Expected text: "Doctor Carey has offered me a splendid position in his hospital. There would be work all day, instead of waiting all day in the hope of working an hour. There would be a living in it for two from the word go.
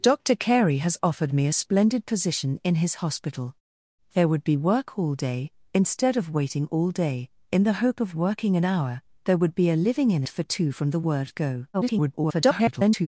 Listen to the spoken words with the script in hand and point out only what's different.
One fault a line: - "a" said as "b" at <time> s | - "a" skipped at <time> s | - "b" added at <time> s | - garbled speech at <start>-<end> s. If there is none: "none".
- "it" skipped at 10.2 s
- garbled speech at 11.7-13.1 s